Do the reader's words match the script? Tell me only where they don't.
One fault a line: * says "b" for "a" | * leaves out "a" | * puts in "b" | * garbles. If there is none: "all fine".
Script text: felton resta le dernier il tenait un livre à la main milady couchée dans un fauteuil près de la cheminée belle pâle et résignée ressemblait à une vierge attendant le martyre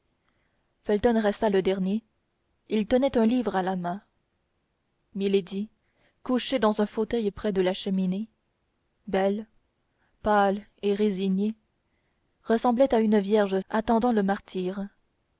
all fine